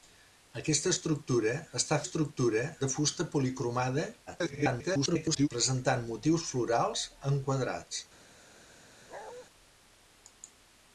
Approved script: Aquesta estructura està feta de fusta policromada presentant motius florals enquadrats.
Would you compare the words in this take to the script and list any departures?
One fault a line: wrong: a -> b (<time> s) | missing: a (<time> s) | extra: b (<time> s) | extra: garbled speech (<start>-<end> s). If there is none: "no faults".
wrong: feta -> estructura (2.0 s)
extra: garbled speech (4.3-5.5 s)